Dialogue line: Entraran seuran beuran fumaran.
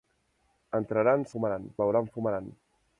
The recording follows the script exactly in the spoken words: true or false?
false